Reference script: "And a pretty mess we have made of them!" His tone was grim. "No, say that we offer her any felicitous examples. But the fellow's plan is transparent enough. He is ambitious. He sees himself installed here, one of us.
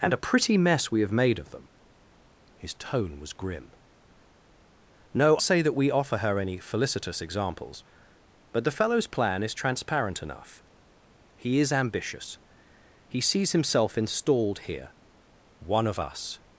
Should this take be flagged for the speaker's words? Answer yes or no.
no